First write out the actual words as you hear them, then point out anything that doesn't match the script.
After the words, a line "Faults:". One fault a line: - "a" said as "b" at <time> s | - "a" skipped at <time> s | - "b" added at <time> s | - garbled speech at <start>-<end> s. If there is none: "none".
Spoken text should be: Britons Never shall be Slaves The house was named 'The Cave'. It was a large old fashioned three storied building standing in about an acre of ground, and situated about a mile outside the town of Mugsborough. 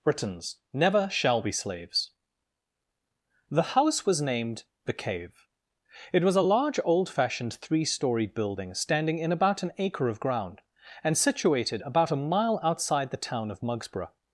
Britons Never shall be Slaves The house was named 'The Cave'. It was a large old fashioned three storied building standing in about an acre of ground, and situated about a mile outside the town of Mugsborough.
Faults:
none